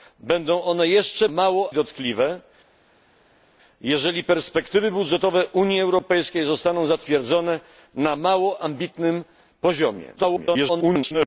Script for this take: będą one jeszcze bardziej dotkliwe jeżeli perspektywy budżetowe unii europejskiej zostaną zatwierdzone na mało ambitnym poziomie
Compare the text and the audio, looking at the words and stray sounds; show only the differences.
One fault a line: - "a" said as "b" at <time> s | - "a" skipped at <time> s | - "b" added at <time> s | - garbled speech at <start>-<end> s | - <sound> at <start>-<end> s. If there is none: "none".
- "bardziej" said as "mało" at 1.3 s
- garbled speech at 10.2-11.3 s